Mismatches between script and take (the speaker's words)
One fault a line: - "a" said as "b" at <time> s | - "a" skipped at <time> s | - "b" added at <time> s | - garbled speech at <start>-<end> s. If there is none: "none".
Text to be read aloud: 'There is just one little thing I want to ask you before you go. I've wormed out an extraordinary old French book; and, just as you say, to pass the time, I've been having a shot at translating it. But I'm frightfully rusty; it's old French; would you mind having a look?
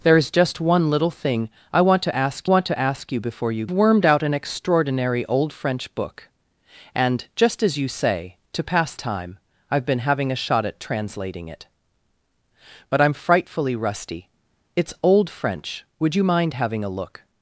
- "want to ask" added at 2.4 s
- "go I've" skipped at 3.7 s
- "the" skipped at 8.9 s